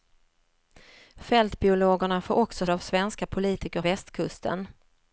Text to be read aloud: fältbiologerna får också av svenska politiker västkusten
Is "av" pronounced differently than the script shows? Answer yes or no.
no